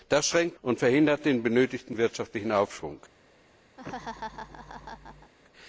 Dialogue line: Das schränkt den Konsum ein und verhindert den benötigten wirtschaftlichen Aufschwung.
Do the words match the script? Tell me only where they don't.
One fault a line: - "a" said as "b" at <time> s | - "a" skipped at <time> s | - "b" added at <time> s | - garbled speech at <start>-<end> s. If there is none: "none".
- "den Konsum ein" skipped at 0.6 s